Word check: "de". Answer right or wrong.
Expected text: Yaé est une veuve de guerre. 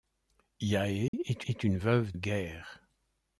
wrong